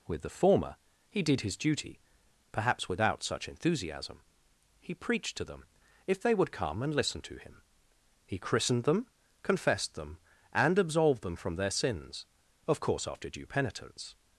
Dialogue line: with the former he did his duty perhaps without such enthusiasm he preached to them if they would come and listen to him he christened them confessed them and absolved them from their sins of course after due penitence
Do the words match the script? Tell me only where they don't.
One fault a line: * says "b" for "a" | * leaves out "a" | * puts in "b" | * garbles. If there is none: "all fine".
all fine